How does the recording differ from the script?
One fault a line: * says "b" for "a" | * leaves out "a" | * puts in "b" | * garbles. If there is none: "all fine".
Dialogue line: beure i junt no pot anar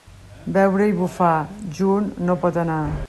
* puts in "bufar"